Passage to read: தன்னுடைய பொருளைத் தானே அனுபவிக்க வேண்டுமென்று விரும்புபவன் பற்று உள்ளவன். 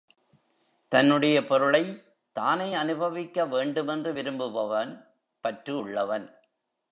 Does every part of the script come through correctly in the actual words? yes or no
yes